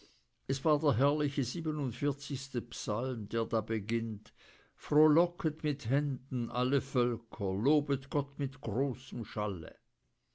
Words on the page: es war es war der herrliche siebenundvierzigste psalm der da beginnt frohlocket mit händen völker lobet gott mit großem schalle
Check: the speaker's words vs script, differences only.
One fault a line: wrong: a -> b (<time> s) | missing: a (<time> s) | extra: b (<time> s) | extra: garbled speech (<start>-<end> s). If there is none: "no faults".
missing: es war (0.8 s)
extra: alle (6.5 s)